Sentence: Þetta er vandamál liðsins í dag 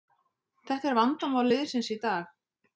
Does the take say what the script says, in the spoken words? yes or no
yes